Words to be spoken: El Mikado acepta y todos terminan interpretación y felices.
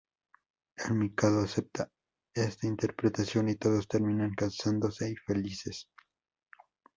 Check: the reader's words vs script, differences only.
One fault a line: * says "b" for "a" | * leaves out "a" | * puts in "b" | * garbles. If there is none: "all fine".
* puts in "esta interpretación"
* says "casándose" for "interpretación"